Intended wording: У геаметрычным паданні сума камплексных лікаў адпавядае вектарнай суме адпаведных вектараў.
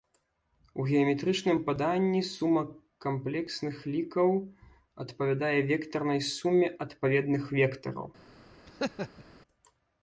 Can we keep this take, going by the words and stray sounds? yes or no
no